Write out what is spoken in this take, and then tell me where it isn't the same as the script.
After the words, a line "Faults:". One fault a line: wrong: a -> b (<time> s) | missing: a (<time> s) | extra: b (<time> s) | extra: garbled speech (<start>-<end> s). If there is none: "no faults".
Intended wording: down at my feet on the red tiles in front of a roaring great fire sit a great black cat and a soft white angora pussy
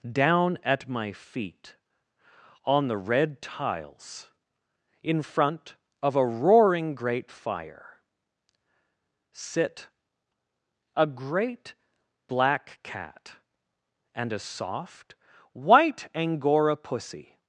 down at my feet on the red tiles in front of a roaring great fire sit a great black cat and a soft white angora pussy
Faults:
no faults